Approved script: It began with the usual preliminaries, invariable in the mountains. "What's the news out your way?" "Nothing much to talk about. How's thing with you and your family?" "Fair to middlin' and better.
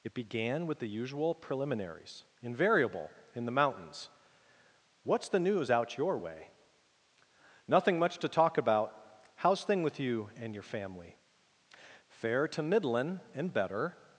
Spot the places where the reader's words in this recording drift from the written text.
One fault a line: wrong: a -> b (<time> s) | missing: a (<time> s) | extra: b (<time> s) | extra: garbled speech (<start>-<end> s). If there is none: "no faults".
no faults